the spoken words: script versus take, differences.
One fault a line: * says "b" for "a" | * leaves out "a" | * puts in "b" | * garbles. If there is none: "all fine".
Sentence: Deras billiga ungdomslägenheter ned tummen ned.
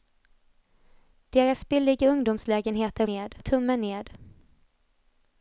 all fine